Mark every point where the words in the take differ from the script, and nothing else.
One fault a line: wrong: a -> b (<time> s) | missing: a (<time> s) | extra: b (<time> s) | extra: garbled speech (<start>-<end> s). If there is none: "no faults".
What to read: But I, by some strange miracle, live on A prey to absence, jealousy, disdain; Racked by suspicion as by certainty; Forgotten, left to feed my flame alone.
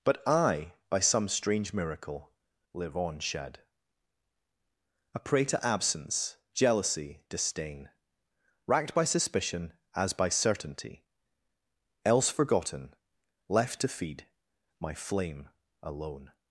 extra: shed (3.2 s)
extra: else (12.1 s)